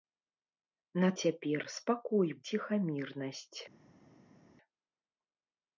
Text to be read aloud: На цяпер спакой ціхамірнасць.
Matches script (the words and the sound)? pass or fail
pass